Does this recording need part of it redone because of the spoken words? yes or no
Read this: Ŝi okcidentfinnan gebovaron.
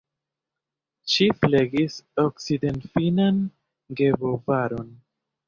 yes